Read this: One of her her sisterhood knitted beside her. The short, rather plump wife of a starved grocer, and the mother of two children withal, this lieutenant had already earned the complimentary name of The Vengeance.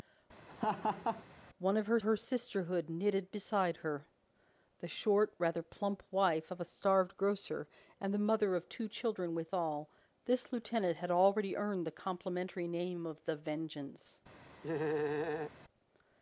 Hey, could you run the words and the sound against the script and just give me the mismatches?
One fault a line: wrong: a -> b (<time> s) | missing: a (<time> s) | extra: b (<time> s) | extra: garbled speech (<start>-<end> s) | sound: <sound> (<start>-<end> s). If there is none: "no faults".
sound: laugh (0.5-1.2 s)
sound: laugh (14.6-15.5 s)